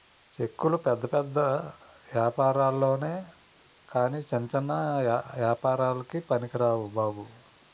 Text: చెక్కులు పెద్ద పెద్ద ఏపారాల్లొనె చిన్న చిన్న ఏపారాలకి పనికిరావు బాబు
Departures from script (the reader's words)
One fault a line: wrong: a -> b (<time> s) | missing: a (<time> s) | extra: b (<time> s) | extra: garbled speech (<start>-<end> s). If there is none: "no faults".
extra: కాని (3.9 s)